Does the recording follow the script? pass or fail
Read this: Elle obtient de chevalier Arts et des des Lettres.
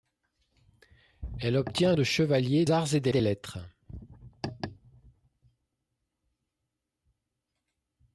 pass